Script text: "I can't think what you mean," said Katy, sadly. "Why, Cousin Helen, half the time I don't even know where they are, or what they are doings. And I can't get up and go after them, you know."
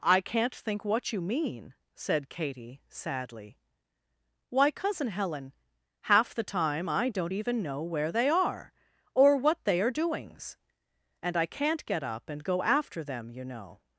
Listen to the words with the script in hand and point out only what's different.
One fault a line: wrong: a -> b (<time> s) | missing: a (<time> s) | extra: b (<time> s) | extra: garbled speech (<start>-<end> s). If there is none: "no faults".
no faults